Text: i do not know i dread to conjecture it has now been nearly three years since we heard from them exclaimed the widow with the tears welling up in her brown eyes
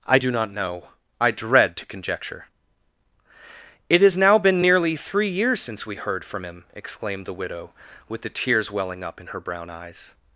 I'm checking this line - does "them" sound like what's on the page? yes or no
no